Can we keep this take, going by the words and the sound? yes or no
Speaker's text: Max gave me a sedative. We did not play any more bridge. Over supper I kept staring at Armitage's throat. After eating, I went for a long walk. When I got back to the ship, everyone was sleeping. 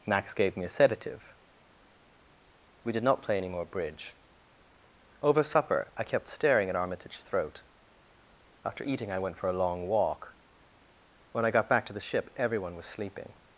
yes